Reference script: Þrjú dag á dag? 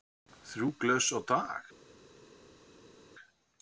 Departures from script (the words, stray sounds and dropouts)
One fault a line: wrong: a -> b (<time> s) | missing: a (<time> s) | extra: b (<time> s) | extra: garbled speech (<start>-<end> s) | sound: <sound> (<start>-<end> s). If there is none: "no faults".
wrong: dag -> glös (0.8 s)